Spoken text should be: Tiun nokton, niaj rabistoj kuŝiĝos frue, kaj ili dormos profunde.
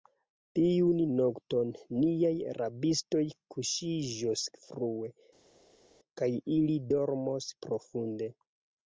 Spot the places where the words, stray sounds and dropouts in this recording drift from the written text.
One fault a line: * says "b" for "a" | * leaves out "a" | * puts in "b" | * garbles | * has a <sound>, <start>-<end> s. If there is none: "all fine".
all fine